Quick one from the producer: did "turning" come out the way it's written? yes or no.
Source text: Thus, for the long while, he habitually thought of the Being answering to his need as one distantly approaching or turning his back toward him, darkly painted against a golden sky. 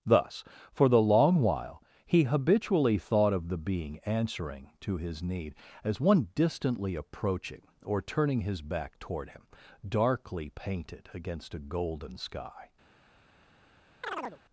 yes